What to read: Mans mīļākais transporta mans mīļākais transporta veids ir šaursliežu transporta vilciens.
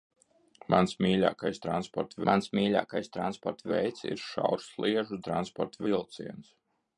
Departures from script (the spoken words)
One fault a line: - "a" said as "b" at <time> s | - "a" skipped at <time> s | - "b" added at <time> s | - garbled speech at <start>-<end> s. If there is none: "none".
none